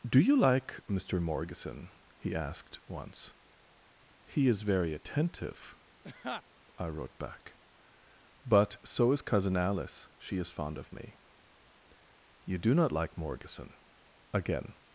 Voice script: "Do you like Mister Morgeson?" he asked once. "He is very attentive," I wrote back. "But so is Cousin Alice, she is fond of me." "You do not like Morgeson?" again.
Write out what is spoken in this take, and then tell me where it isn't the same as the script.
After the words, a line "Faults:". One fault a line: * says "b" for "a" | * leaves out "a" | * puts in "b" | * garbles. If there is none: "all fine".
"Do you like Mister Morgeson?" he asked once. "He is very attentive," I wrote back. "But so is Cousin Alice, she is fond of me." "You do not like Morgeson?" again.
Faults:
all fine